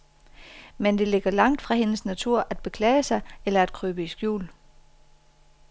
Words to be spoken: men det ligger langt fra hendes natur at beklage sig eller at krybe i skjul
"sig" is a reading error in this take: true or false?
false